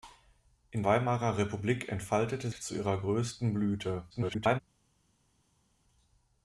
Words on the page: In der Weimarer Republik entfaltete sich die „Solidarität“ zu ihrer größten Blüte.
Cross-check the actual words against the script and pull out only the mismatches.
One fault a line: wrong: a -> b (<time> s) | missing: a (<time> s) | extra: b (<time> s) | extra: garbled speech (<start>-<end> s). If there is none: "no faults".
missing: der (0.8 s)
missing: sich die Solidarität (2.5 s)
extra: garbled speech (4.1-4.6 s)